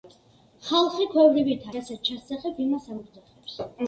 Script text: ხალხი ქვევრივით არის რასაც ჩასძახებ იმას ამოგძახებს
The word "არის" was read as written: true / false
false